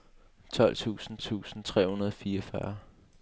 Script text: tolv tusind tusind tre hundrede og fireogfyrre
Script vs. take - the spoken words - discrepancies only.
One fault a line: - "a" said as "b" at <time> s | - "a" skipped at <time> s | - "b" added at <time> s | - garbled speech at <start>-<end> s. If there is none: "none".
none